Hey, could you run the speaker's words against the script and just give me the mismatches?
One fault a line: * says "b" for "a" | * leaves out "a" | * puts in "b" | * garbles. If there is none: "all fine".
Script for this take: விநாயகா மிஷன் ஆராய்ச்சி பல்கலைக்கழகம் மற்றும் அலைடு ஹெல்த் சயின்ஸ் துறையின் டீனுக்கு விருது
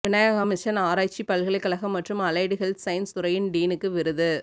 all fine